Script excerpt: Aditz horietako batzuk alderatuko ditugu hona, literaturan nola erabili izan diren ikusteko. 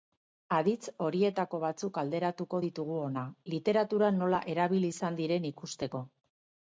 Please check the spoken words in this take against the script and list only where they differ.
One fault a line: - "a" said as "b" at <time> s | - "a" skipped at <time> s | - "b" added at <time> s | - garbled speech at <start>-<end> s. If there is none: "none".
none